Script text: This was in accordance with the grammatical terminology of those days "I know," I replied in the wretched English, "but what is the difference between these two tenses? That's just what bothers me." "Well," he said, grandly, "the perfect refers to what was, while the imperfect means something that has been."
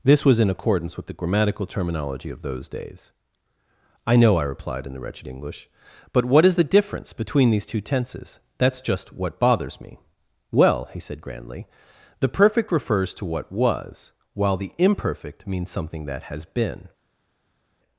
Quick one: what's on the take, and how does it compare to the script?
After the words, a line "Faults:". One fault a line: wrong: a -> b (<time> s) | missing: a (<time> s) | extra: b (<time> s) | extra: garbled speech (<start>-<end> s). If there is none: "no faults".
This was in accordance with the grammatical terminology of those days "I know," I replied in the wretched English, "but what is the difference between these two tenses? That's just what bothers me." "Well," he said, grandly, "the perfect refers to what was, while the imperfect means something that has been."
Faults:
no faults